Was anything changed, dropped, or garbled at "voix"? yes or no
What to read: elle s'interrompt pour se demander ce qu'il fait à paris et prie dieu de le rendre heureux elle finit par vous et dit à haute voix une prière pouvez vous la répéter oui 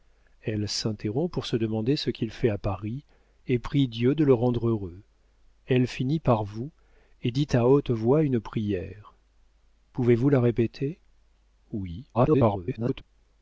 no